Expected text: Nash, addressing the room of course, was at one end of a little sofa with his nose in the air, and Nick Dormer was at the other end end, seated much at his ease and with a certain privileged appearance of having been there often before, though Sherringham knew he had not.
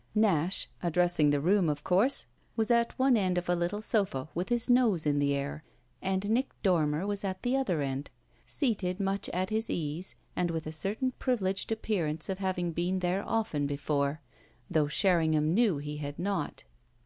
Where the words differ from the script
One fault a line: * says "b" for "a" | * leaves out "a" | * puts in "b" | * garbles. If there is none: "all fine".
* leaves out "end"